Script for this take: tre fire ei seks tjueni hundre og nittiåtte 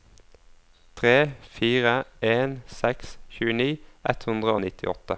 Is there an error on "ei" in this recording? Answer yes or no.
yes